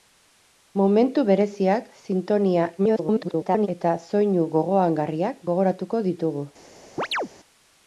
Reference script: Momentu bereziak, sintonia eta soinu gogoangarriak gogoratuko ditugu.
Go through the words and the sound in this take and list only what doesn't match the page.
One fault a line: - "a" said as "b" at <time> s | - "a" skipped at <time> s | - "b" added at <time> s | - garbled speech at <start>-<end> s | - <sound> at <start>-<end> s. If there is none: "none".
- garbled speech at 2.8-3.7 s
- chirp at 7.0-7.3 s